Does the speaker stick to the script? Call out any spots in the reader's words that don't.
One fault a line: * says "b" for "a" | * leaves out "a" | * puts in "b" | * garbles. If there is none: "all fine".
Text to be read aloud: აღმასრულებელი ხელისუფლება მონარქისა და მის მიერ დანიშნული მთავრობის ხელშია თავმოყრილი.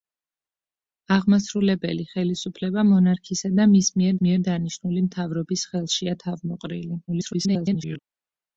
* puts in "მიერ"
* garbles